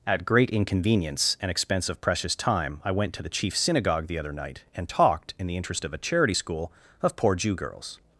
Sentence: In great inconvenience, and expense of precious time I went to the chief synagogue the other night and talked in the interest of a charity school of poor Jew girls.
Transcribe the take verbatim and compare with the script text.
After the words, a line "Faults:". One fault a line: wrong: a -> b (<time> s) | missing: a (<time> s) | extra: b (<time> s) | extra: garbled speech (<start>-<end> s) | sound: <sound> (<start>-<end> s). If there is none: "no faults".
At great inconvenience, and expense of precious time I went to the chief synagogue the other night and talked in the interest of a charity school of poor Jew girls.
Faults:
wrong: In -> At (0.1 s)